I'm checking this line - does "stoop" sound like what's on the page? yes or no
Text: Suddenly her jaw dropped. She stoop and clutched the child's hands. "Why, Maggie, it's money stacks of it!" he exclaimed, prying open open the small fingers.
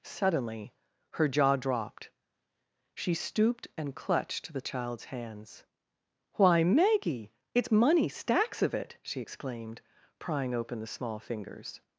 no